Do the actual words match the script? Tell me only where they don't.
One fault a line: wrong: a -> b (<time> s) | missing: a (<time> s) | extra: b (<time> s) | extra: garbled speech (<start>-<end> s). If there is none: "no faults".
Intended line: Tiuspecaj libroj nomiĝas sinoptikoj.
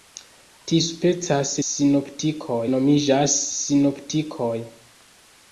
wrong: libroj -> sinoptikoj (1.7 s)